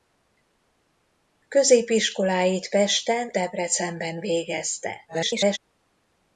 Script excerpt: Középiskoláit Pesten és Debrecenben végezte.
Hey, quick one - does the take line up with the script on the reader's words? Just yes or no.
no